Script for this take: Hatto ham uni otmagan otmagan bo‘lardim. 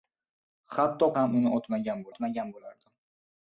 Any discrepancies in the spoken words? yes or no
no